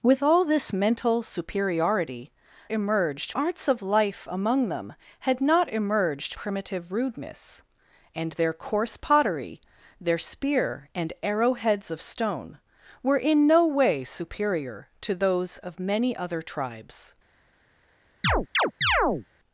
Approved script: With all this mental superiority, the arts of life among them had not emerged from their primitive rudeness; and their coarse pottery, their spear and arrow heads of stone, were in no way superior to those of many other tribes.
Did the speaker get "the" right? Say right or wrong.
wrong